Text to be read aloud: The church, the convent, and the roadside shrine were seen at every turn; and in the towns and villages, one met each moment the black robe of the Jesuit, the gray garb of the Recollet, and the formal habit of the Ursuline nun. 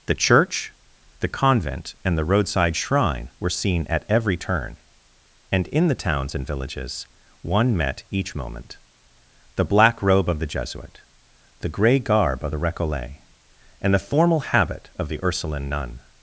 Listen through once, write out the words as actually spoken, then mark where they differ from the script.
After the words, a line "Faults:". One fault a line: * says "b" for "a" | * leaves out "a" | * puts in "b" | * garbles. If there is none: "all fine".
The church, the convent, and the roadside shrine were seen at every turn; and in the towns and villages, one met each moment the black robe of the Jesuit, the gray garb of the Recollet, and the formal habit of the Ursuline nun.
Faults:
all fine